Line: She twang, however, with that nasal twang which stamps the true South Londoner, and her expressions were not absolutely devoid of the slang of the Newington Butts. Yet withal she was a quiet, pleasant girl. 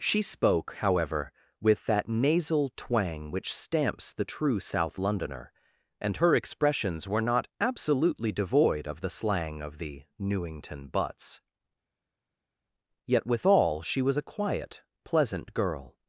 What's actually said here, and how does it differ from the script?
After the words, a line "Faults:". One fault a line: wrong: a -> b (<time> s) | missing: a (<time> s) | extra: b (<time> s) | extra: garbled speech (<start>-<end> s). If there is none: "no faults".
She spoke, however, with that nasal twang which stamps the true South Londoner, and her expressions were not absolutely devoid of the slang of the Newington Butts. Yet withal she was a quiet, pleasant girl.
Faults:
wrong: twang -> spoke (0.2 s)